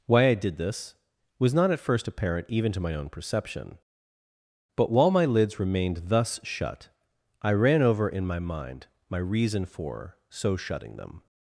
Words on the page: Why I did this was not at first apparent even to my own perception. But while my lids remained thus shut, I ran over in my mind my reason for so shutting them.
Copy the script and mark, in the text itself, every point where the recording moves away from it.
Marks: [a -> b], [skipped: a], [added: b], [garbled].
Why I did this was not at first apparent even to my own perception. But while my lids remained thus shut, I ran over in my mind my reason for so shutting them.